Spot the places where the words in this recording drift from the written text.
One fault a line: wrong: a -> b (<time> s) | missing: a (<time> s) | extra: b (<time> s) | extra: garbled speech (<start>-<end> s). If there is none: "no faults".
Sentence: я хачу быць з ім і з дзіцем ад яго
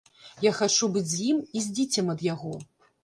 no faults